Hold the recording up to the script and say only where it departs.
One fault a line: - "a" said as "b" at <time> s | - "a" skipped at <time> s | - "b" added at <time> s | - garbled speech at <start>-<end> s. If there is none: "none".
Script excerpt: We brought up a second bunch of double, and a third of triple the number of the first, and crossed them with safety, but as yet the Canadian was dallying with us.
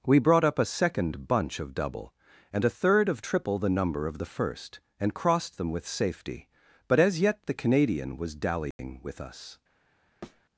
none